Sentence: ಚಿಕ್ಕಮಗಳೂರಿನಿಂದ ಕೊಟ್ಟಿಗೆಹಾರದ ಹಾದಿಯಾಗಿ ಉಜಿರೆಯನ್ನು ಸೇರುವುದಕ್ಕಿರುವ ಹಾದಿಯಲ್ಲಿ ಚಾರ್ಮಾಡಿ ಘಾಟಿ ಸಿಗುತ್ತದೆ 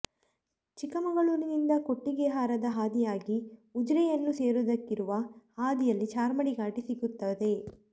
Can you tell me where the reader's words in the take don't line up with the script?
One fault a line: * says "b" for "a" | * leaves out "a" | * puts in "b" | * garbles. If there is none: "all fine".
all fine